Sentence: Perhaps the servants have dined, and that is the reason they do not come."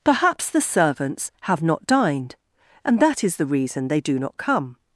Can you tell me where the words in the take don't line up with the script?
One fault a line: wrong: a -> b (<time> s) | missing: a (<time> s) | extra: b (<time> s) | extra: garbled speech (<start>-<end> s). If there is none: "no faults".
extra: not (1.6 s)